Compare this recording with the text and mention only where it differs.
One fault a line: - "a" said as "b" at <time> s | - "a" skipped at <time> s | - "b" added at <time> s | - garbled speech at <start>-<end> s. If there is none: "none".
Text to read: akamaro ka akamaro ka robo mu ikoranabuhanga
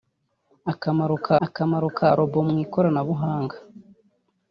none